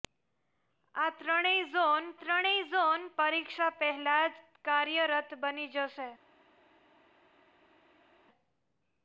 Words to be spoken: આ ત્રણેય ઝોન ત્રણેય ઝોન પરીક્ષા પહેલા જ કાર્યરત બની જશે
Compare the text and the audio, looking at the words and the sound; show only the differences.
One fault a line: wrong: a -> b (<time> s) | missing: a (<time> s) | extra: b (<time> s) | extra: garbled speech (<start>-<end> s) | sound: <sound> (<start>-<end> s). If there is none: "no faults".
no faults